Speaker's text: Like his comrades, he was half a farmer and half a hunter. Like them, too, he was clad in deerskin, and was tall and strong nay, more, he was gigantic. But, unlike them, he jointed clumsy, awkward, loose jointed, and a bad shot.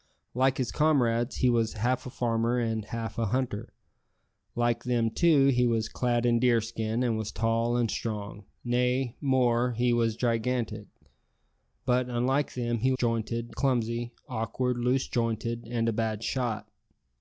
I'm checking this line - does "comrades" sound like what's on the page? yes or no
yes